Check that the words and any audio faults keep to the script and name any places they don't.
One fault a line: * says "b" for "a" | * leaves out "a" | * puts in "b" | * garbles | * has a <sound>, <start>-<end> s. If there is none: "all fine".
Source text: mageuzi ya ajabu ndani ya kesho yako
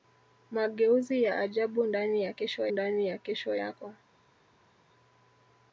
* puts in "ndani ya kesho"